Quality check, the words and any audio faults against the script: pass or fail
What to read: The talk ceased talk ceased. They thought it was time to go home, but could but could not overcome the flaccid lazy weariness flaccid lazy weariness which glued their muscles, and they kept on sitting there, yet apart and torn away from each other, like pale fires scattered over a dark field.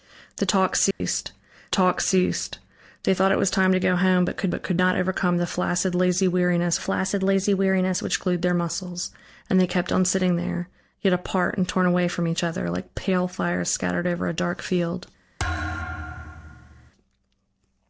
fail